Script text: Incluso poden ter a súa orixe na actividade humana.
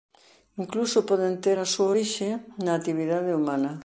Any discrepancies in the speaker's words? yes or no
no